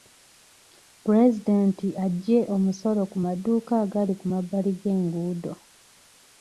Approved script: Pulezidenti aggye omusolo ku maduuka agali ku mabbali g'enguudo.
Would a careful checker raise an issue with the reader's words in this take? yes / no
no